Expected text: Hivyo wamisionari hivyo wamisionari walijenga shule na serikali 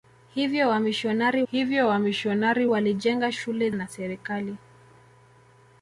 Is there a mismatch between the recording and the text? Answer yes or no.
no